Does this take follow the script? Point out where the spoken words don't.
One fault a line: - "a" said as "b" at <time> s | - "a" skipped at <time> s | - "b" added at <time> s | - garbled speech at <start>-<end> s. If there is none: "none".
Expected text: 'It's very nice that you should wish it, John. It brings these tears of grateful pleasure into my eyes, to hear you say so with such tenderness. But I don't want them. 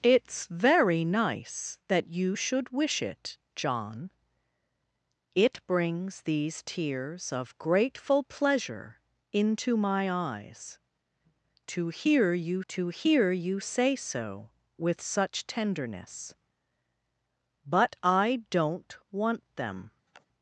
- "to hear you" added at 12.7 s